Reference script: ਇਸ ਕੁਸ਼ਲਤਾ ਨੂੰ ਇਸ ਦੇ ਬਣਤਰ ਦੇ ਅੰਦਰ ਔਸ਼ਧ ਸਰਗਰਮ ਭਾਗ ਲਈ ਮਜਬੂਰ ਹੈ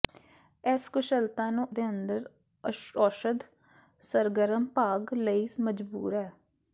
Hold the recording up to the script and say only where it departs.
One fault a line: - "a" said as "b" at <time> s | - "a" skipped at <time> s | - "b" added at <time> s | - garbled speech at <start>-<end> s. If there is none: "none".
- "ਇਸ ਦੇ ਬਣਤਰ" skipped at 1.7 s